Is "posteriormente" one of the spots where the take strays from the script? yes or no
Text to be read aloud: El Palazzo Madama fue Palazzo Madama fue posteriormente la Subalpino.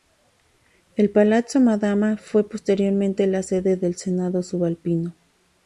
yes